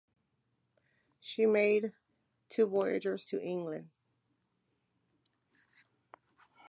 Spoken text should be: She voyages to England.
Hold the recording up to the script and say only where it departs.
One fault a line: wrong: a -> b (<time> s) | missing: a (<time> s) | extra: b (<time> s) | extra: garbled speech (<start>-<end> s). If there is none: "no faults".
extra: made two (1.4 s)